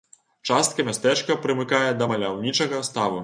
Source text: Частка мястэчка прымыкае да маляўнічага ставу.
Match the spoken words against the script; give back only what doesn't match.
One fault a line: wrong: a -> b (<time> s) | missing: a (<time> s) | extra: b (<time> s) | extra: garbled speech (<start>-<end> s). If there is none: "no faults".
no faults